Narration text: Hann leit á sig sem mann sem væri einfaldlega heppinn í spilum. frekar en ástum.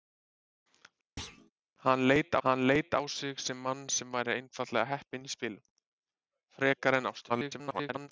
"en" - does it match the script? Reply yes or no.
yes